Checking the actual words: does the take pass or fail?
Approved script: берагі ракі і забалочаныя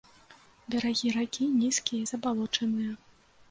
fail